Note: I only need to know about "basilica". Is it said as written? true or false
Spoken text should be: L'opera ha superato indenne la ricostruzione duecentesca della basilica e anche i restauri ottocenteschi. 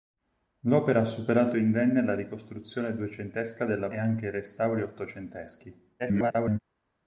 false